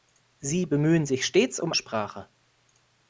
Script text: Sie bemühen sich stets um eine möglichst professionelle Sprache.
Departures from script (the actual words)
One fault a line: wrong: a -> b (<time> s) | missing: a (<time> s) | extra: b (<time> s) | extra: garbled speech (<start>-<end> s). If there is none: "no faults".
missing: eine möglichst professionelle (1.7 s)